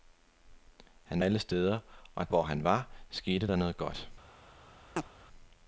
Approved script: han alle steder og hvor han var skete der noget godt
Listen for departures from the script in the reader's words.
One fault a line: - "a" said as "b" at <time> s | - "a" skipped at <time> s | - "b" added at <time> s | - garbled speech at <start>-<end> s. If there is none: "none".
none